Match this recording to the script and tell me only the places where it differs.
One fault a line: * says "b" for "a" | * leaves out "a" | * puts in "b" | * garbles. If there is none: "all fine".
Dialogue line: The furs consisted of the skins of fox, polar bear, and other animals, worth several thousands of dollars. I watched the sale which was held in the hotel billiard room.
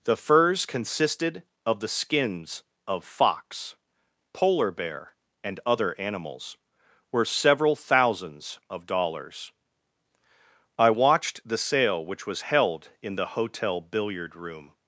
* says "were" for "worth"